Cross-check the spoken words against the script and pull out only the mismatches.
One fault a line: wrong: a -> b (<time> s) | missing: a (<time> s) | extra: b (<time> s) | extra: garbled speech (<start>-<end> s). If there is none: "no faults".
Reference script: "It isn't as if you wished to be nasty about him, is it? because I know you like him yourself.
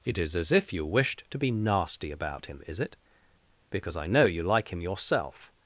wrong: isn't -> is (0.2 s)